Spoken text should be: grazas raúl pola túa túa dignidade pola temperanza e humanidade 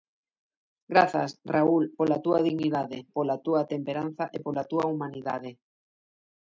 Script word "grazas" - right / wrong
right